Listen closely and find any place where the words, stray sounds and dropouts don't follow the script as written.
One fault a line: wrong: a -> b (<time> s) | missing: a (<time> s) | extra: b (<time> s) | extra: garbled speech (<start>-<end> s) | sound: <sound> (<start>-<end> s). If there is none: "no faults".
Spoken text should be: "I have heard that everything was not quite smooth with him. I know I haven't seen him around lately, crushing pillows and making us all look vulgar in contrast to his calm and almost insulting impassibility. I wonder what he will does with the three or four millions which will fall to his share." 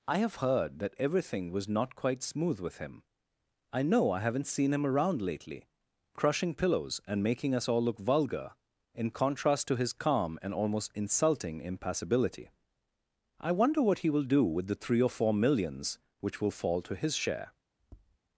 wrong: does -> do (14.2 s)
sound: tap (17.8-18.2 s)